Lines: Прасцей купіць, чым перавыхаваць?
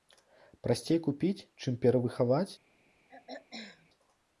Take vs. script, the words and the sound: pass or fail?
fail